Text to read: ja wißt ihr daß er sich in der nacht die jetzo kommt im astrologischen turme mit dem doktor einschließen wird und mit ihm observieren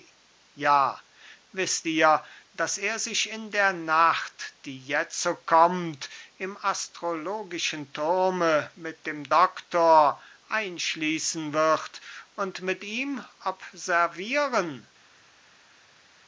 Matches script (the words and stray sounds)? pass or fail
pass